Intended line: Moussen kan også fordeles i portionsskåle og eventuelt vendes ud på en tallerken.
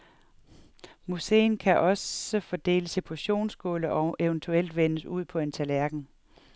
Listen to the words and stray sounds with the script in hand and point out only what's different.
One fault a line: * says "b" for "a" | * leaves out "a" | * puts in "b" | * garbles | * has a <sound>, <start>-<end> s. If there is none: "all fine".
all fine